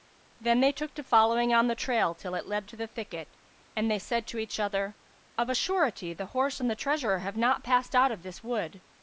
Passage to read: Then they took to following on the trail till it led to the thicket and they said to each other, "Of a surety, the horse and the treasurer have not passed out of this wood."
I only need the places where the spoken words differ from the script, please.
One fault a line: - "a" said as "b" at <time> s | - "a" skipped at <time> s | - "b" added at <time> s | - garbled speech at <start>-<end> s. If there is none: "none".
none